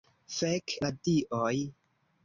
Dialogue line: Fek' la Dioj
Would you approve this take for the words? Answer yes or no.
yes